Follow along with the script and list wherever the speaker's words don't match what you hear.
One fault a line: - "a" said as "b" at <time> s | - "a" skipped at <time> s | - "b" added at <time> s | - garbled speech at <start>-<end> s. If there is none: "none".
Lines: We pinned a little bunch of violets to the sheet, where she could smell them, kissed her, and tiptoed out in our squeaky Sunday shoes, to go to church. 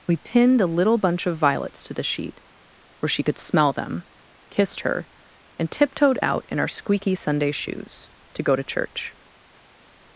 none